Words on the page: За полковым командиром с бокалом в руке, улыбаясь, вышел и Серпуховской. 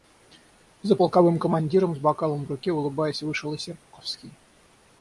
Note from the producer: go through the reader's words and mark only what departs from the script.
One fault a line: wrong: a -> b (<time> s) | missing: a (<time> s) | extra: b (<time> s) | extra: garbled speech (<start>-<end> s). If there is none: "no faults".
no faults